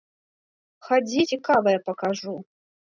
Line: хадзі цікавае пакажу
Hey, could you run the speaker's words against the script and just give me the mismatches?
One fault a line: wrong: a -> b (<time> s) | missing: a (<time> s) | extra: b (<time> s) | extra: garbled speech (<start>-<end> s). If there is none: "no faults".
no faults